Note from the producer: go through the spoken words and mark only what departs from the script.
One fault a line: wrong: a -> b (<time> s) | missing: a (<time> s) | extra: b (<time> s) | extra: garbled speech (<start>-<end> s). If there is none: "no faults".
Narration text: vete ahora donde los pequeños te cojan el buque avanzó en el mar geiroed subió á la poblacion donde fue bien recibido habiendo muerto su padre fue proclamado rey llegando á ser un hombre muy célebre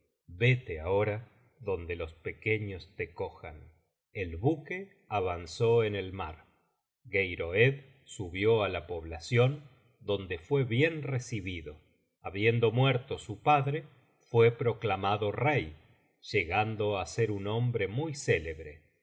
no faults